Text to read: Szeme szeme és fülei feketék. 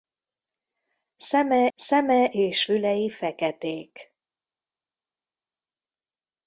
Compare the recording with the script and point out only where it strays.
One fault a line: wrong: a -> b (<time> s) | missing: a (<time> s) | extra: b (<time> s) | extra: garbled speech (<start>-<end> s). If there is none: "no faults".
no faults